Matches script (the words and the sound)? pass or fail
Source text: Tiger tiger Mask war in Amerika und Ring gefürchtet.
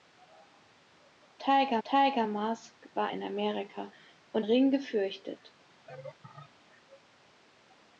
fail